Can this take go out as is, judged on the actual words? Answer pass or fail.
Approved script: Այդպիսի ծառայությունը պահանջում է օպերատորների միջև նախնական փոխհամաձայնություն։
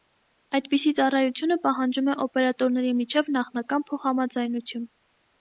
pass